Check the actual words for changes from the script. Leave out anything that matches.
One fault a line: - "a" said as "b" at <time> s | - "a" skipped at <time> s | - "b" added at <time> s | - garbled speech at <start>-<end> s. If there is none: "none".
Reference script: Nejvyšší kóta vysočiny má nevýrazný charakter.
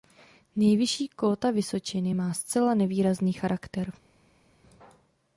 - "zcela" added at 2.3 s